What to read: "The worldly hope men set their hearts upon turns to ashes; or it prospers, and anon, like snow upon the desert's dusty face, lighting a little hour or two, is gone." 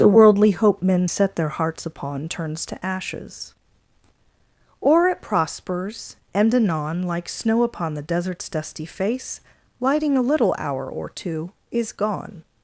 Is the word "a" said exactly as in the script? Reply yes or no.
yes